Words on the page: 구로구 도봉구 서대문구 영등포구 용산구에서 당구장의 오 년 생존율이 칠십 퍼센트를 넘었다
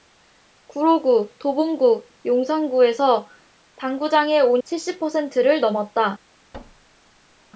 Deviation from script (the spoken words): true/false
true